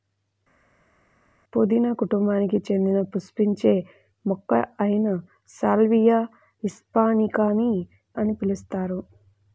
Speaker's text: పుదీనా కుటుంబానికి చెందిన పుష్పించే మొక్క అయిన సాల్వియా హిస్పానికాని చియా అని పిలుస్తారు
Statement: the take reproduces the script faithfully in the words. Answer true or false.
false